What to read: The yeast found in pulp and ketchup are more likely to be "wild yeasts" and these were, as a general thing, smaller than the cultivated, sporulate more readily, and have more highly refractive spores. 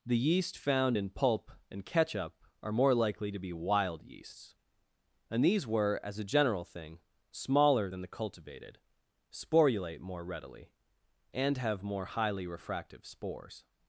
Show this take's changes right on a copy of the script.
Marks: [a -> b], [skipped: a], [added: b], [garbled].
The yeast found in pulp and ketchup are more likely to be "wild yeasts" and these were, as a general thing, smaller than the cultivated, sporulate more readily, and have more highly refractive spores.